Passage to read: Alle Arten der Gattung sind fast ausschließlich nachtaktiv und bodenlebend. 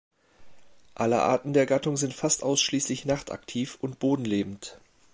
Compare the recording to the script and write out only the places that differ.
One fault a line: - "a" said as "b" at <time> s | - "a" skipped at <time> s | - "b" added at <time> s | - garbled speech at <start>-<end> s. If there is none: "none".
none